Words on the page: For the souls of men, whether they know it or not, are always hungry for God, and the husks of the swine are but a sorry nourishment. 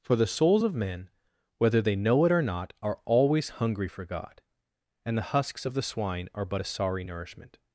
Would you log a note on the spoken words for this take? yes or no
no